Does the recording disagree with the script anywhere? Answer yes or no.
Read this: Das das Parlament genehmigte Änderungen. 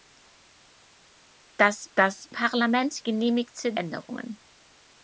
no